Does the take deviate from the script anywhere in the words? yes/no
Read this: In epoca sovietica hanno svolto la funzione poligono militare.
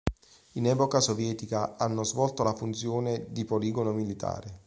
yes